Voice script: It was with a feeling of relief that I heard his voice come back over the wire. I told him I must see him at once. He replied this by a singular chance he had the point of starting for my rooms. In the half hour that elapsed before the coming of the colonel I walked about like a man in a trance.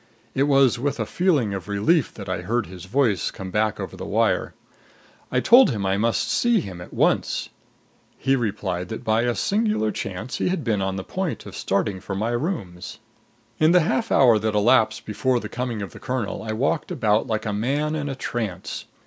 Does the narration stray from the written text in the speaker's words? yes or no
yes